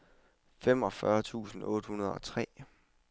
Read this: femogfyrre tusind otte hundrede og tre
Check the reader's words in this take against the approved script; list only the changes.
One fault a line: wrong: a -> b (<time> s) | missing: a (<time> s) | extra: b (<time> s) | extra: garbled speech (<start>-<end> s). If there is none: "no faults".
no faults